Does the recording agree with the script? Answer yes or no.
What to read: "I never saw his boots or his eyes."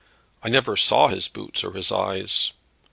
yes